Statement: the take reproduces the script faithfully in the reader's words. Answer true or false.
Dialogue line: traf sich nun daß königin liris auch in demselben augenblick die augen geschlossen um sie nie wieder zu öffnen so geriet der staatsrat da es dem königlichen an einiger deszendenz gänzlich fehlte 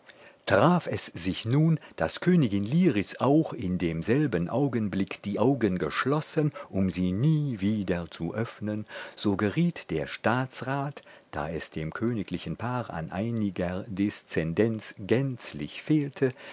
false